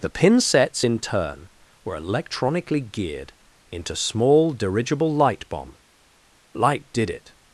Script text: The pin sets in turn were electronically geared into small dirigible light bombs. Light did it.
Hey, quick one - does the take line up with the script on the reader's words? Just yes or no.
no